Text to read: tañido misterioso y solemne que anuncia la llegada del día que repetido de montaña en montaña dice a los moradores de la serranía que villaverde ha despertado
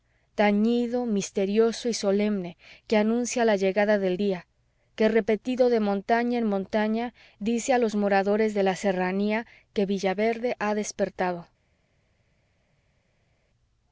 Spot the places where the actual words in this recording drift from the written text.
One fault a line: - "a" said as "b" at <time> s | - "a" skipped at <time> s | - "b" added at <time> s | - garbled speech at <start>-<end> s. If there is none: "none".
none